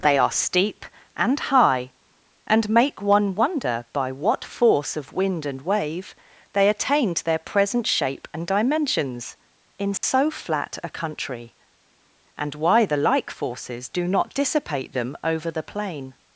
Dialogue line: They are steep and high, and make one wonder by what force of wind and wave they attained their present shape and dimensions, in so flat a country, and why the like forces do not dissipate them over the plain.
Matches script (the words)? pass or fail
pass